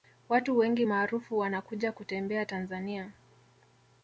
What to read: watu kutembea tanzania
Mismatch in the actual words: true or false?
true